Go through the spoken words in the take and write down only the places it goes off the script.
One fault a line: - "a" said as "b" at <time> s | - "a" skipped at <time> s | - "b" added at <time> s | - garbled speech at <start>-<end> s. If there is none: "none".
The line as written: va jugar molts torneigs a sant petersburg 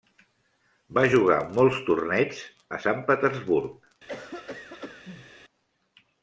none